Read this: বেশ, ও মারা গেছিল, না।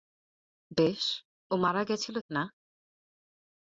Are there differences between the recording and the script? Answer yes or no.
no